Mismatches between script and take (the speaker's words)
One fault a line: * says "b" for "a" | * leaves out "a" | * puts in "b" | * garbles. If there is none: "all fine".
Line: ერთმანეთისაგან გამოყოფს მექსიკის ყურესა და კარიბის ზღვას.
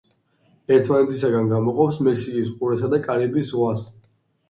all fine